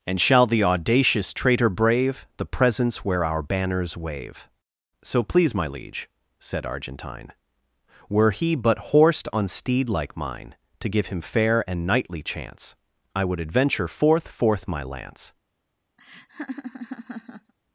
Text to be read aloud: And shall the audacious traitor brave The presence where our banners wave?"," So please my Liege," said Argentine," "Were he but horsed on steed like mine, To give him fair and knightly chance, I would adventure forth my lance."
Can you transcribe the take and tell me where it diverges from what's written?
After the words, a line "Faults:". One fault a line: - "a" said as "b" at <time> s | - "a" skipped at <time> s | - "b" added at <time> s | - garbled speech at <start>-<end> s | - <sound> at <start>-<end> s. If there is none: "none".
And shall the audacious traitor brave The presence where our banners wave?"," So please my Liege," said Argentine," "Were he but horsed on steed like mine, To give him fair and knightly chance, I would adventure forth forth my lance."
Faults:
- "forth" added at 14.3 s
- laugh at 16.0-17.5 s